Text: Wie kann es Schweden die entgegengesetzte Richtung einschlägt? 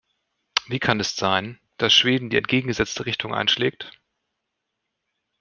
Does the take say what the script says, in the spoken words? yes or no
no